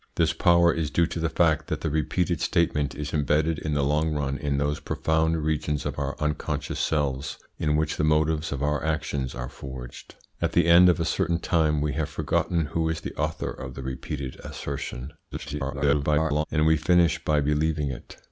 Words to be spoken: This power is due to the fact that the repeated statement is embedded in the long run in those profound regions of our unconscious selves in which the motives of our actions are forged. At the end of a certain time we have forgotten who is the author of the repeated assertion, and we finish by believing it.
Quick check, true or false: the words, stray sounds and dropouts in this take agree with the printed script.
false